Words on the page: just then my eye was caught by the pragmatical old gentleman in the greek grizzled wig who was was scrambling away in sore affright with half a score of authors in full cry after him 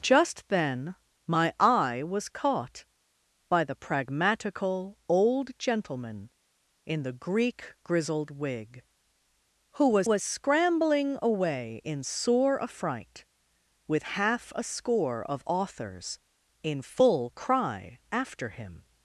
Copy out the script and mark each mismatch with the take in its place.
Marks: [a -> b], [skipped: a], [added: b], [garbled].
just then my eye was caught by the pragmatical old gentleman in the greek grizzled wig who was was scrambling away in sore affright with half a score of authors in full cry after him